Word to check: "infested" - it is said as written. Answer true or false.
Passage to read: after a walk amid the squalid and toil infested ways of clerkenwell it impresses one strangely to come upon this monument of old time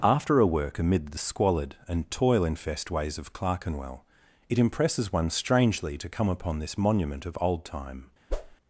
false